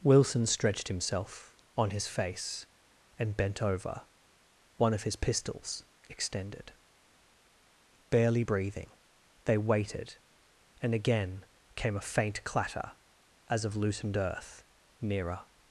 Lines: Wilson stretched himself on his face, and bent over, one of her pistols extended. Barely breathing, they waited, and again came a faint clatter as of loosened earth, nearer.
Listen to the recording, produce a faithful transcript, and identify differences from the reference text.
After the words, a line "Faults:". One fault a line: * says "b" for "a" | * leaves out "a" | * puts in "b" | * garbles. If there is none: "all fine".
Wilson stretched himself on his face, and bent over, one of his pistols extended. Barely breathing, they waited, and again came a faint clatter as of loosened earth, nearer.
Faults:
* says "his" for "her"